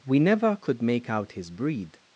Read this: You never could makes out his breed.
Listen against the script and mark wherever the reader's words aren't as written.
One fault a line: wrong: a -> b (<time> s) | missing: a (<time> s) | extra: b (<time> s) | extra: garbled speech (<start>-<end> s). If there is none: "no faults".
wrong: You -> We (0.1 s)
wrong: makes -> make (0.8 s)